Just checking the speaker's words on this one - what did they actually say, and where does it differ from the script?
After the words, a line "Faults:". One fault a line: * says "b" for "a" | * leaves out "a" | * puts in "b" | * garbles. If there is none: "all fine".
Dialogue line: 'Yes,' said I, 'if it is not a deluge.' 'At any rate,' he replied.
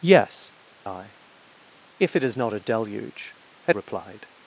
'Yes,' I, 'if it is not a deluge.' 'At replied.
Faults:
* leaves out "said"
* leaves out "any rate he"